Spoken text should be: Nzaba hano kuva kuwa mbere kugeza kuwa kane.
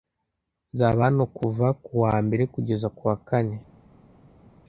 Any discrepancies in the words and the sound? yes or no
no